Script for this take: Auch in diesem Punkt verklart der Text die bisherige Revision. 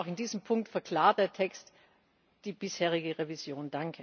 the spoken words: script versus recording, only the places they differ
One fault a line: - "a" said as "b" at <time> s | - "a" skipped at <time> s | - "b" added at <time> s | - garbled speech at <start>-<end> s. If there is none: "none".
none